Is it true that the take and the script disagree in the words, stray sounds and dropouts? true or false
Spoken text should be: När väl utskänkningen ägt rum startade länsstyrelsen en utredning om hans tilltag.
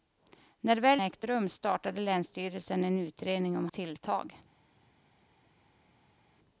true